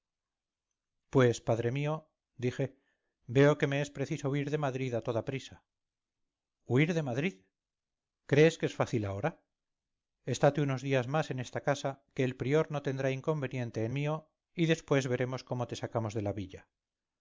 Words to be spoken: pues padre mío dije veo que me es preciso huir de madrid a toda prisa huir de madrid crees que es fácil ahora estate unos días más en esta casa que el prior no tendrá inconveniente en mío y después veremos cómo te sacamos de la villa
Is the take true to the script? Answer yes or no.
yes